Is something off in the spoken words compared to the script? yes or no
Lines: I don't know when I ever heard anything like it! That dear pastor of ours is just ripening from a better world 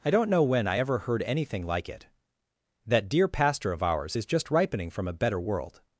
no